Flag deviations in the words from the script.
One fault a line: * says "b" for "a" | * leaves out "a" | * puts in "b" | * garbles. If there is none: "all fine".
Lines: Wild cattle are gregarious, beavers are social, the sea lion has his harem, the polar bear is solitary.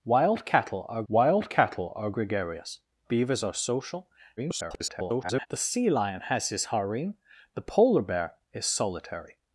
* puts in "wild cattle are"
* garbles